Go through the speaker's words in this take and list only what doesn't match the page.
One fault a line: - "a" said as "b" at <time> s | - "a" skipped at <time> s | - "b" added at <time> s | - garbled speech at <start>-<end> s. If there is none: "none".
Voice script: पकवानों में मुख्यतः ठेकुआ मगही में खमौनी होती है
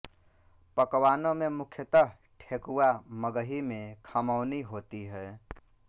none